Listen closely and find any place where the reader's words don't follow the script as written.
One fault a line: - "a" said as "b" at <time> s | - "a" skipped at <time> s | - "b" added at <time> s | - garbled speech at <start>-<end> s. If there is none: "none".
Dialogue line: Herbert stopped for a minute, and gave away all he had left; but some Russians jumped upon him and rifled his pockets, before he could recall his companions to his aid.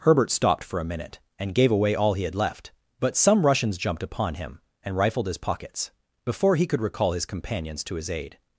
none